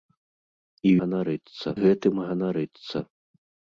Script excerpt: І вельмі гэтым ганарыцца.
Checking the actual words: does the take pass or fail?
fail